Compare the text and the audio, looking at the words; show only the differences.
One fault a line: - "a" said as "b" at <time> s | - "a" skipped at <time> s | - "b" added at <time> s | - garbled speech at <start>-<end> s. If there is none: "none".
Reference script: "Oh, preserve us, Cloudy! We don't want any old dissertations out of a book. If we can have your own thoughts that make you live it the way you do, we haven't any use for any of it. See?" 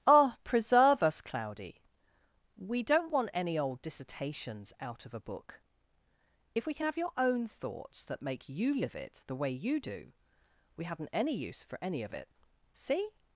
none